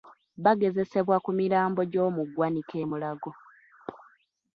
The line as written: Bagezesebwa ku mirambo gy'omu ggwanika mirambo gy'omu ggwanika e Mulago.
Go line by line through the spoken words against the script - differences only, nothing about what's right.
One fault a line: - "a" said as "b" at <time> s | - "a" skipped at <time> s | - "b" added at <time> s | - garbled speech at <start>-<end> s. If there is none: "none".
- "mirambo gy'omu ggwanika" skipped at 2.8 s